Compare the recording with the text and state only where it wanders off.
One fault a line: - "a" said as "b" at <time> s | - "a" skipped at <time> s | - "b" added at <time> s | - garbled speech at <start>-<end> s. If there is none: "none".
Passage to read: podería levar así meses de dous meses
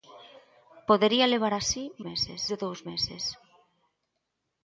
none